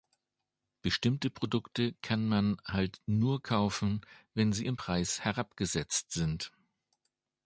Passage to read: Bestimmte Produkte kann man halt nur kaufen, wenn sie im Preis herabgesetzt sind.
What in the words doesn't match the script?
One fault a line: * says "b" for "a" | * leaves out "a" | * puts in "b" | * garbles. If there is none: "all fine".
all fine